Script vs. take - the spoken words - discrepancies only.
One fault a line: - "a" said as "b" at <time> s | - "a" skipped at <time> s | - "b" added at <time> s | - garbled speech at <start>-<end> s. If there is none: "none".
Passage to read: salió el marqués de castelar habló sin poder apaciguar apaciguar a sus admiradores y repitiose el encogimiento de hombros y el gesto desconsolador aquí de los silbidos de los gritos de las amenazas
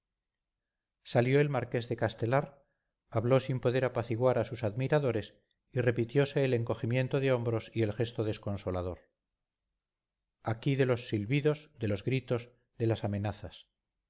- "apaciguar" skipped at 4.4 s